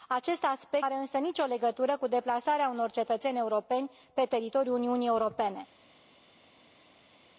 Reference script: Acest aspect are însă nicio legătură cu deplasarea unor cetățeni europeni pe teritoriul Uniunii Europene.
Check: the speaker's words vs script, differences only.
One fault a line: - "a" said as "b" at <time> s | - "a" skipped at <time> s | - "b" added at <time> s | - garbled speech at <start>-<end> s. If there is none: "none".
none